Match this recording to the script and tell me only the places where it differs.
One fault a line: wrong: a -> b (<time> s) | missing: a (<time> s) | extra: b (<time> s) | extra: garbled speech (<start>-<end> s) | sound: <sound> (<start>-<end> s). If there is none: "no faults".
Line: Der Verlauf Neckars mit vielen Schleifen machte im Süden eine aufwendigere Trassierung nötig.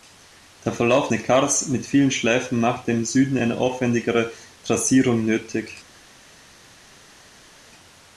no faults